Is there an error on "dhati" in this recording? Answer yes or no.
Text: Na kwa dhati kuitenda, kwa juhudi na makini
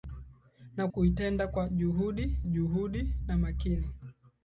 yes